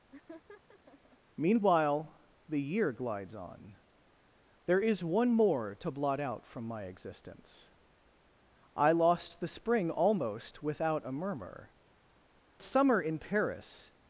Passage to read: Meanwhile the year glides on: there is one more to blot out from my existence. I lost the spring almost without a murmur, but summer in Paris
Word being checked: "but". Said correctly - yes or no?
no